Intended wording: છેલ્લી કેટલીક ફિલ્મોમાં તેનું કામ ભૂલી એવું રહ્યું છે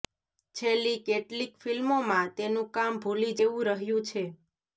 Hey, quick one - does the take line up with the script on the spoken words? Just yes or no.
yes